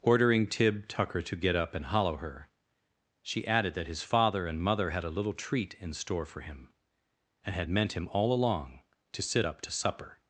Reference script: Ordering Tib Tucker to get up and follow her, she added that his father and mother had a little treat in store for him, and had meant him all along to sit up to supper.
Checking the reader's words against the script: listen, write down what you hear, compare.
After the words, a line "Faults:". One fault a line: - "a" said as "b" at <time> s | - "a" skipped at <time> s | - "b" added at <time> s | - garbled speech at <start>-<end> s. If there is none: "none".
Ordering Tib Tucker to get up and hollow her, she added that his father and mother had a little treat in store for him, and had meant him all along to sit up to supper.
Faults:
- "follow" said as "hollow" at 1.9 s